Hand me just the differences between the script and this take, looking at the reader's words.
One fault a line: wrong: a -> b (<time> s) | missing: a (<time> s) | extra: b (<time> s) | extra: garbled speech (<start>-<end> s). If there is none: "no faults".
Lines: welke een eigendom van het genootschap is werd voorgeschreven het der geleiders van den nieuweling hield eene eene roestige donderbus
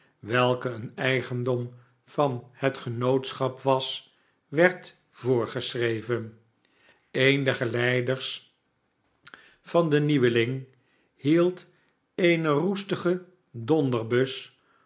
wrong: is -> was (3.6 s)
wrong: het -> een (7.1 s)
missing: eene (12.5 s)